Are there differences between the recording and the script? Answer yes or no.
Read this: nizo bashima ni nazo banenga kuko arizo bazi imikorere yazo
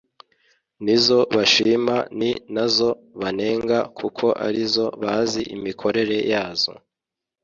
no